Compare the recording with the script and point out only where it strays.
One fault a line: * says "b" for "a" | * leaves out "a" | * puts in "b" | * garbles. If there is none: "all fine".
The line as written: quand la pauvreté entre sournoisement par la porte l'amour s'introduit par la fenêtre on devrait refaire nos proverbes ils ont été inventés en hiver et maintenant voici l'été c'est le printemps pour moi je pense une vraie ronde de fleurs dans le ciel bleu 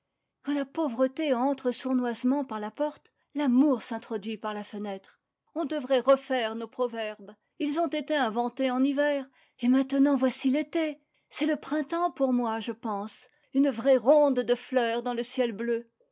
all fine